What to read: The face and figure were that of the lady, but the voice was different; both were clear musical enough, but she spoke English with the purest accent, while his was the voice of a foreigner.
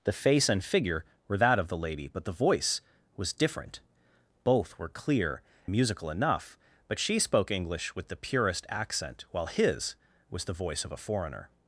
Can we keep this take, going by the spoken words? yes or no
yes